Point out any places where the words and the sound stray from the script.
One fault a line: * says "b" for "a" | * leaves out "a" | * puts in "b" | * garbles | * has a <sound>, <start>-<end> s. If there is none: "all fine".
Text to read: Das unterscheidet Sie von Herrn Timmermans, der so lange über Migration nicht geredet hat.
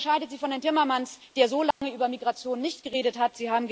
* has a dropout, 1.7-1.8 s